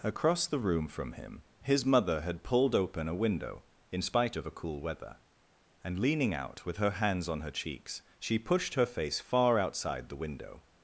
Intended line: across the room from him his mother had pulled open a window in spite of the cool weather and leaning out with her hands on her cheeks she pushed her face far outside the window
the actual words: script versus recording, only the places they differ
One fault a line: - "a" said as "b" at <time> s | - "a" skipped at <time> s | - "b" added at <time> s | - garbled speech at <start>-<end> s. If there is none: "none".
- "the" said as "a" at 4.5 s